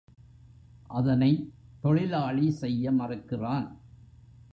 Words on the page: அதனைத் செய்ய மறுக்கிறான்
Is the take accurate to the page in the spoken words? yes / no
no